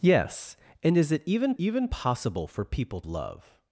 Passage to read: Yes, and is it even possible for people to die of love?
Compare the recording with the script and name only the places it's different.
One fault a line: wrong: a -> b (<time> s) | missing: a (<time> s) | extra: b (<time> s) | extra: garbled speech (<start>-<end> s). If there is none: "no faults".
extra: even (1.6 s)
missing: to die of (3.0 s)